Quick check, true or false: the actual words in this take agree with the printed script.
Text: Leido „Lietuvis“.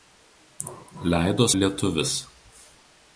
true